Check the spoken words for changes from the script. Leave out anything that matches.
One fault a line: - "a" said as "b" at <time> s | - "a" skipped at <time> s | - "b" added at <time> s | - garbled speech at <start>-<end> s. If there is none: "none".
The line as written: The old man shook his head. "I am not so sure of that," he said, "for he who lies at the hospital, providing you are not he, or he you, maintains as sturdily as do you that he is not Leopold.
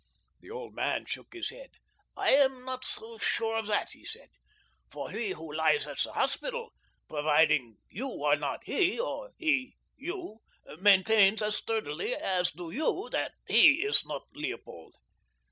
none